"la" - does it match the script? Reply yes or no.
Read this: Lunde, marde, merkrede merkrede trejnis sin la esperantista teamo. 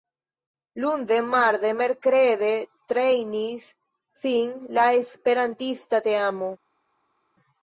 yes